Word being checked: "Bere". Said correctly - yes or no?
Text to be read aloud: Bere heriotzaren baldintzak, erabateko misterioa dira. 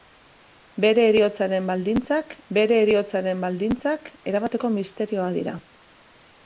yes